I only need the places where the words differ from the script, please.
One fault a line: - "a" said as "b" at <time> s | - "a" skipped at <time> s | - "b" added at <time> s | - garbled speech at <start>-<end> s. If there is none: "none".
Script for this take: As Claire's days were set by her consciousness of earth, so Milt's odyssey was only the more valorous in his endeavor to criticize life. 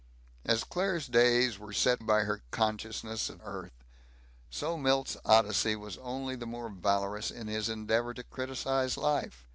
none